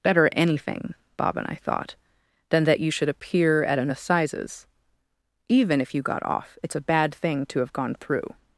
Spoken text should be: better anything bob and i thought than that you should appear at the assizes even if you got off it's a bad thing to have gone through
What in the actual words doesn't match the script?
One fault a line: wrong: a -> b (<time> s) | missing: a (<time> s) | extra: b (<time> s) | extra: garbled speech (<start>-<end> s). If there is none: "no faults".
wrong: the -> an (3.8 s)